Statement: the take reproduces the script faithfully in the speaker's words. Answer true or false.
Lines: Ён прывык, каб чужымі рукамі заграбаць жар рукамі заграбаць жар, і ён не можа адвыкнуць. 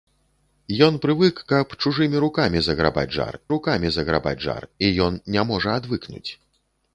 true